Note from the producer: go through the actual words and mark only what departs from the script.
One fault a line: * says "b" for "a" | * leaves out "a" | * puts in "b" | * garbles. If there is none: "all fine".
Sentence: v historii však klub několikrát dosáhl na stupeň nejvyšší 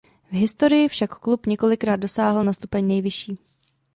all fine